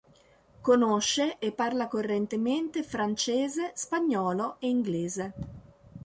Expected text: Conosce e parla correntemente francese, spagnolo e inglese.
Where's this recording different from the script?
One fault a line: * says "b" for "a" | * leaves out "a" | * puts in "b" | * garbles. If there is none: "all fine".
all fine